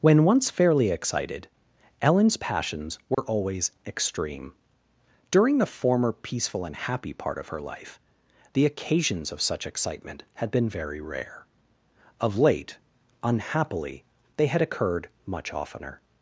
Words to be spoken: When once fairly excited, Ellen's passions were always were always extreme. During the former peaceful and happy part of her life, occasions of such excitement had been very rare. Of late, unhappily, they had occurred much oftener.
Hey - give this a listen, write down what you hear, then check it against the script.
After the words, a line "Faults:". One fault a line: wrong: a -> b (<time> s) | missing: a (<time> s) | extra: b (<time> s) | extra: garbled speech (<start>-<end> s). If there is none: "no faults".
When once fairly excited, Ellen's passions were always extreme. During the former peaceful and happy part of her life, the occasions of such excitement had been very rare. Of late, unhappily, they had occurred much oftener.
Faults:
missing: were always (3.7 s)
extra: the (8.5 s)